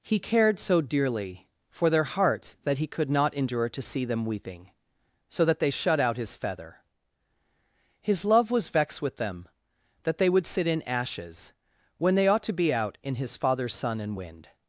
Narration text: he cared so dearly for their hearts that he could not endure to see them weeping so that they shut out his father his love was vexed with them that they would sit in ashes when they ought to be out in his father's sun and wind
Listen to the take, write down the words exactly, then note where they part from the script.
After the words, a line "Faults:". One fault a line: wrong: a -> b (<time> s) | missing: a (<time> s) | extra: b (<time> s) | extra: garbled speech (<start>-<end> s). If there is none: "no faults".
he cared so dearly for their hearts that he could not endure to see them weeping so that they shut out his feather his love was vexed with them that they would sit in ashes when they ought to be out in his father's sun and wind
Faults:
wrong: father -> feather (6.3 s)